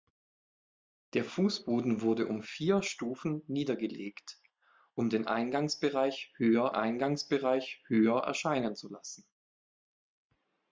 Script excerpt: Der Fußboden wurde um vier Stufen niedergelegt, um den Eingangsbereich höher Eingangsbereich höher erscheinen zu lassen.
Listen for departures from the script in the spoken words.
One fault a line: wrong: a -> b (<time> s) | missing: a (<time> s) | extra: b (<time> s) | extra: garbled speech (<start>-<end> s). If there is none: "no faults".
no faults